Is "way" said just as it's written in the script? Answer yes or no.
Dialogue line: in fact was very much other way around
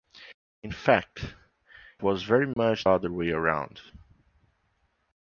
yes